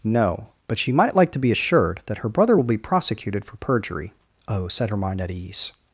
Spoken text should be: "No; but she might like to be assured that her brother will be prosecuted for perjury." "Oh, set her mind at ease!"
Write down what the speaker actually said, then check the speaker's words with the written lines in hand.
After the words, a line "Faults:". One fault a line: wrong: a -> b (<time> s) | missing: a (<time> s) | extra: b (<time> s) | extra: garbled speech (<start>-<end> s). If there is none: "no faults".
"No; but she might like to be assured that her brother will be prosecuted for perjury." "Oh, set her mind at ease!"
Faults:
no faults